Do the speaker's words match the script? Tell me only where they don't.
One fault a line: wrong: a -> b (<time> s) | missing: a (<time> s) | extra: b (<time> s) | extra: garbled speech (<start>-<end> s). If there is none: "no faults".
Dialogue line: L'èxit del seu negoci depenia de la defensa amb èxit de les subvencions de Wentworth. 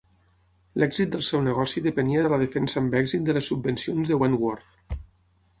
no faults